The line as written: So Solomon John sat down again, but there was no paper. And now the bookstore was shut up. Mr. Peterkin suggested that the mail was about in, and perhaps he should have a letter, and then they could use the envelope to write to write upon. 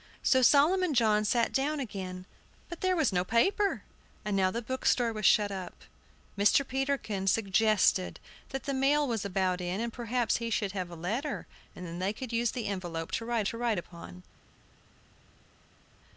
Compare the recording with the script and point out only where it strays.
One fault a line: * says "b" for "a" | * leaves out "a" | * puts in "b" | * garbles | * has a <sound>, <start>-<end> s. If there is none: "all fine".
all fine